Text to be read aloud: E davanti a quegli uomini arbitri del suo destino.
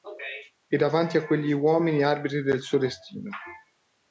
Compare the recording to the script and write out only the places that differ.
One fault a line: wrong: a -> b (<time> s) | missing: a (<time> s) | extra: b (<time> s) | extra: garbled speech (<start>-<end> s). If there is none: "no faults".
no faults